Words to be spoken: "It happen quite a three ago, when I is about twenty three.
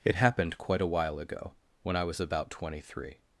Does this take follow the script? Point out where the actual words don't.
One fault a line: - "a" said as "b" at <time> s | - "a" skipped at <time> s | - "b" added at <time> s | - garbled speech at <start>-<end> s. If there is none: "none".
- "happen" said as "happened" at 0.1 s
- "three" said as "while" at 0.9 s
- "is" said as "was" at 2.0 s